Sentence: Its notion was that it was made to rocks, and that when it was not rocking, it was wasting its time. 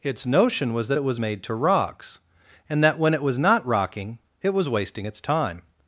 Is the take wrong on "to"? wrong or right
right